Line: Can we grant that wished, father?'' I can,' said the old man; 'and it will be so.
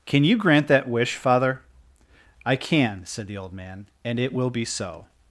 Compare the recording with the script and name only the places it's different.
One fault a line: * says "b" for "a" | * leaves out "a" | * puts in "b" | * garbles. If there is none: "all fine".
* says "you" for "we"
* says "wish" for "wished"